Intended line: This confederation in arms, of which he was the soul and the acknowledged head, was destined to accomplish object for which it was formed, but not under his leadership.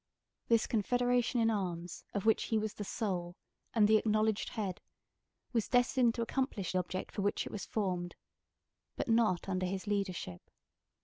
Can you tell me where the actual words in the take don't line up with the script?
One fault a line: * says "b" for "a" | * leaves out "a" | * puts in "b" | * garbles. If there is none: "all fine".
all fine